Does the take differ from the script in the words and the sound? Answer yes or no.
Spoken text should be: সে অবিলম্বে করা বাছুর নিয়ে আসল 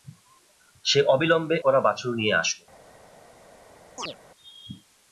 yes